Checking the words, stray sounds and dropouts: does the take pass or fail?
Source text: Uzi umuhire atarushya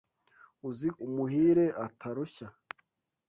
pass